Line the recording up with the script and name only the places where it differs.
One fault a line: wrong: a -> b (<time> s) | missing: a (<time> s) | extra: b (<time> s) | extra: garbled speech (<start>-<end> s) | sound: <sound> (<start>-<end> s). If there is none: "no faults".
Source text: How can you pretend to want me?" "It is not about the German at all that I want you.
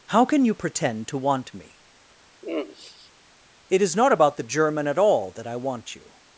sound: sigh (2.4-3.1 s)